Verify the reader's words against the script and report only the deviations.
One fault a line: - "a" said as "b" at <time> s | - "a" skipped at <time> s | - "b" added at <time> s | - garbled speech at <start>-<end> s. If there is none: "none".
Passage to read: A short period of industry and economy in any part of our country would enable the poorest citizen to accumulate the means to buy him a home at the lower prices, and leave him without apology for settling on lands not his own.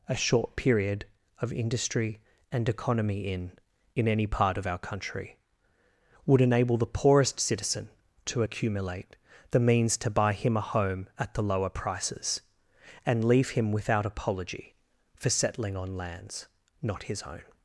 - "in" added at 4.0 s